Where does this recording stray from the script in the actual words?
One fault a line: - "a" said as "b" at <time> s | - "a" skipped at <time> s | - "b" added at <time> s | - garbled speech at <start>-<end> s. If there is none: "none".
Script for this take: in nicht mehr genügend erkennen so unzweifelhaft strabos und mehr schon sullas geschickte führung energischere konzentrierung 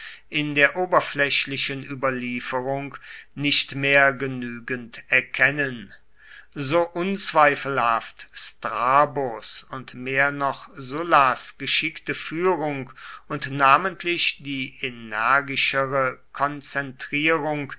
- "der oberflächlichen überlieferung" added at 0.6 s
- "schon" said as "noch" at 10.3 s
- "und namentlich die" added at 13.3 s